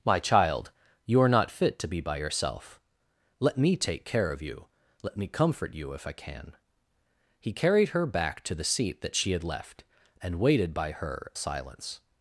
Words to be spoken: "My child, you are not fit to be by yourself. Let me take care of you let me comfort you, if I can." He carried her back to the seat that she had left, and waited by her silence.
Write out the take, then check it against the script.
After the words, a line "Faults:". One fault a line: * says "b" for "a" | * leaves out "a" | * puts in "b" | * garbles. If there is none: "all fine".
"My child, you are not fit to be by yourself. Let me take care of you let me comfort you, if I can." He carried her back to the seat that she had left, and waited by her silence.
Faults:
all fine